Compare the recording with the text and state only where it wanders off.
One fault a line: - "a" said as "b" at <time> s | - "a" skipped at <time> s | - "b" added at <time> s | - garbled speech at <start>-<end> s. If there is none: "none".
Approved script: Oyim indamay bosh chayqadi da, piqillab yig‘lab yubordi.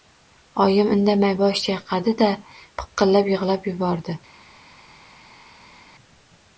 none